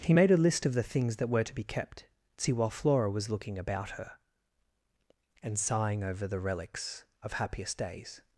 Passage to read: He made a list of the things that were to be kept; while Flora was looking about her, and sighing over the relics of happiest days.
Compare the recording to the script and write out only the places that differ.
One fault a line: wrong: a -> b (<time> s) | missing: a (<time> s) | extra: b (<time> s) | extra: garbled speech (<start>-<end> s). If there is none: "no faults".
extra: see (2.4 s)